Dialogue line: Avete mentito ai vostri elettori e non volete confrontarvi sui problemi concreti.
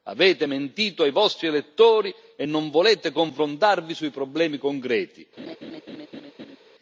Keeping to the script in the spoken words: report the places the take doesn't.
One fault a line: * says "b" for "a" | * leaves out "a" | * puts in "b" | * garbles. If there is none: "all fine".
all fine